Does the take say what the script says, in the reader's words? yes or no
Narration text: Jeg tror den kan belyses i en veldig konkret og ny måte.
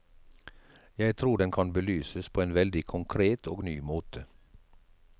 no